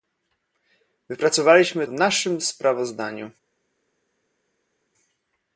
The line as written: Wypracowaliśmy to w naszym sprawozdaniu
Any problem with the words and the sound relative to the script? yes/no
yes